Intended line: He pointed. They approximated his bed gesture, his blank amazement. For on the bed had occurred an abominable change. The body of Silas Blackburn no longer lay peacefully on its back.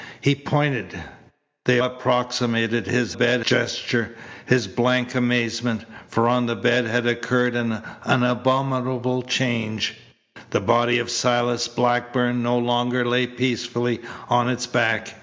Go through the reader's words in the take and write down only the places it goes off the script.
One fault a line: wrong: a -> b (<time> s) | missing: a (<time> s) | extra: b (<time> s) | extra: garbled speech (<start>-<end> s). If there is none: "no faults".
no faults